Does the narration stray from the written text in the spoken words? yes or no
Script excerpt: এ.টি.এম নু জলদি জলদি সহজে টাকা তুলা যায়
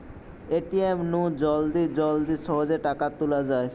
no